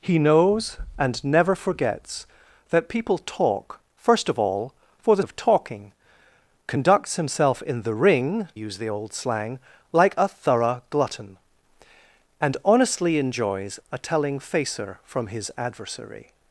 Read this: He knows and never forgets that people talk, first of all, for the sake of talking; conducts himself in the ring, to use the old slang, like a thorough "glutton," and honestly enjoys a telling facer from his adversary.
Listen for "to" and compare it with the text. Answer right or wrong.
wrong